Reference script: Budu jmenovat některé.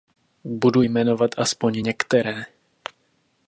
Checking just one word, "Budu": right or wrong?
right